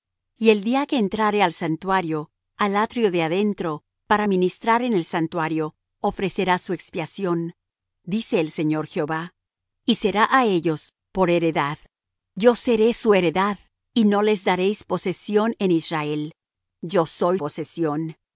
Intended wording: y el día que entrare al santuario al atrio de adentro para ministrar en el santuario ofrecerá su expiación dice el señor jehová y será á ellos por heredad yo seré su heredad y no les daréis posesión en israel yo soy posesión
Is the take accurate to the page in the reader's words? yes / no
yes